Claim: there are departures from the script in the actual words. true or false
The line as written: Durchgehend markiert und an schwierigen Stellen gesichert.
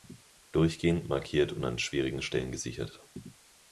false